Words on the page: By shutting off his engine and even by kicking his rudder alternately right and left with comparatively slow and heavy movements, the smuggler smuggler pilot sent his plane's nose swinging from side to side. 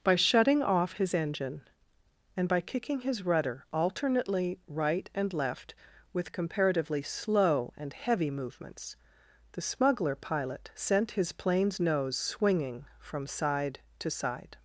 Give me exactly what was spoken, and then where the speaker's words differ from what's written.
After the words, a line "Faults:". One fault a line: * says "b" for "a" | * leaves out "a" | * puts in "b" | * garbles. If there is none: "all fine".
By shutting off his engine and by kicking his rudder alternately right and left with comparatively slow and heavy movements, the smuggler pilot sent his plane's nose swinging from side to side.
Faults:
* leaves out "even"
* leaves out "smuggler"